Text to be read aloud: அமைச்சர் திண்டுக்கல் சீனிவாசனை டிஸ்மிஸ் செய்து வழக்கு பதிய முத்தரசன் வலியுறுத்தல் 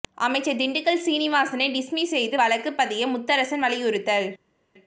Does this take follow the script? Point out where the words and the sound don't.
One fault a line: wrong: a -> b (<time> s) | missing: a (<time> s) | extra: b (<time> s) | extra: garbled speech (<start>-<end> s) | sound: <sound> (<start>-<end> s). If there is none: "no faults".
no faults